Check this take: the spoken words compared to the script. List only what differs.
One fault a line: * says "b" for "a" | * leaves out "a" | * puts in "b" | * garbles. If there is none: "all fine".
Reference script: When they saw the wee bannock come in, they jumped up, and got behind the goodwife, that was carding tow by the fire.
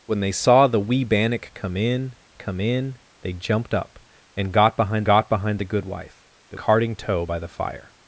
* puts in "come in"
* puts in "got behind"
* leaves out "was"